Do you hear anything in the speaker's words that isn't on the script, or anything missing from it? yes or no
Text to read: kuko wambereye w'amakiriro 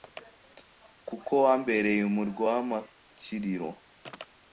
yes